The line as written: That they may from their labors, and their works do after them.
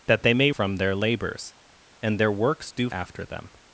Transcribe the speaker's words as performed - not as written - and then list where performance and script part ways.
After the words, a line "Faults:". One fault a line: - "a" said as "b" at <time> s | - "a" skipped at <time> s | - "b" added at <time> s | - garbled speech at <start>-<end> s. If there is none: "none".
That they may from their labors, and their works do after them.
Faults:
none